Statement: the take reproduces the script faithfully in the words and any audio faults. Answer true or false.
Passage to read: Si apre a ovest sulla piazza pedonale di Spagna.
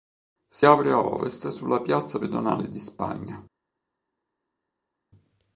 true